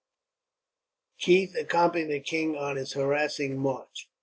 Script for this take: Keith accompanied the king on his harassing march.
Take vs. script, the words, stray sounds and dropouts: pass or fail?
pass